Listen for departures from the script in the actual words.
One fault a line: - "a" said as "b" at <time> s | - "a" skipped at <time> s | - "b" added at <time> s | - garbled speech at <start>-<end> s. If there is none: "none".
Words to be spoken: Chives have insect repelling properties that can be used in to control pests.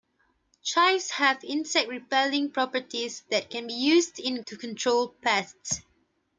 none